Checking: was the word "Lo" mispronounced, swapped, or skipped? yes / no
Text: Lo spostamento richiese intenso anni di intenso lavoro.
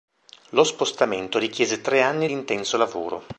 no